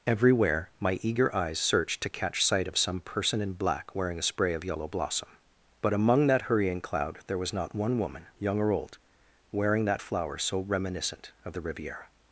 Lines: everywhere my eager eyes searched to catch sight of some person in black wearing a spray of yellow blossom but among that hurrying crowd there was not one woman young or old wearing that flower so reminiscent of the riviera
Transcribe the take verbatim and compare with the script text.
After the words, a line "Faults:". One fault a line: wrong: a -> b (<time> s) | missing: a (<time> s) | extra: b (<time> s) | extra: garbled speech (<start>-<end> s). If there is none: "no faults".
everywhere my eager eyes searched to catch sight of some person in black wearing a spray of yellow blossom but among that hurrying cloud there was not one woman young or old wearing that flower so reminiscent of the riviera
Faults:
wrong: crowd -> cloud (6.8 s)